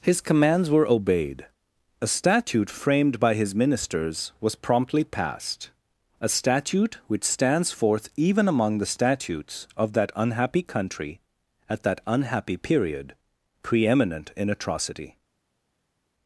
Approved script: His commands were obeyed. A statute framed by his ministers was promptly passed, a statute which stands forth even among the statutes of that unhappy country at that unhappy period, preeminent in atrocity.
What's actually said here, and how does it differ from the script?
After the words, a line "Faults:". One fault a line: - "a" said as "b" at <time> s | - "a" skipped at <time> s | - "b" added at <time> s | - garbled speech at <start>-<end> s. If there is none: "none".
His commands were obeyed. A statute framed by his ministers was promptly passed, a statute which stands forth even among the statutes of that unhappy country at that unhappy period, preeminent in atrocity.
Faults:
none